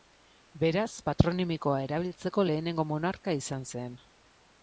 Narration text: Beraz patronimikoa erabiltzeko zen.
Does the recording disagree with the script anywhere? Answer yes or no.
yes